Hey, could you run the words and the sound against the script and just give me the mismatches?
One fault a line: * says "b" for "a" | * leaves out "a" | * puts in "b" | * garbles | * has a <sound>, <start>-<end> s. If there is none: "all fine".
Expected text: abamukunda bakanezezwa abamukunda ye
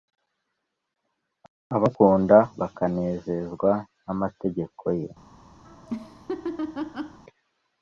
* says "n'amategeko" for "abamukunda"
* has a laugh, 5.6-7.2 s